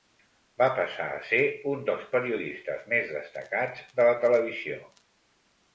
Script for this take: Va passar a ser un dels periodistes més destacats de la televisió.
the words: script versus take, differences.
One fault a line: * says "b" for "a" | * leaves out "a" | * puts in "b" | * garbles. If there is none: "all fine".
all fine